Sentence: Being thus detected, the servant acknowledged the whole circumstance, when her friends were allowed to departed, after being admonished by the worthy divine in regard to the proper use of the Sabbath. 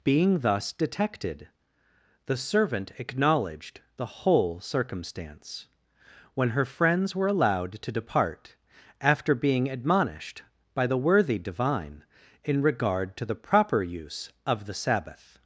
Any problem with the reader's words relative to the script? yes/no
yes